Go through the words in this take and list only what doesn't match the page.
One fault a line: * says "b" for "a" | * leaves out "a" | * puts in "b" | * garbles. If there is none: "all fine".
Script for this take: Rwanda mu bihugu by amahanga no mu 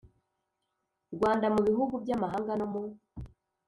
all fine